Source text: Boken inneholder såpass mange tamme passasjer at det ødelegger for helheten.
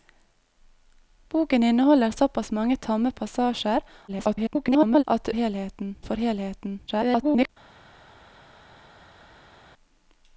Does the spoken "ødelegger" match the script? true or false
false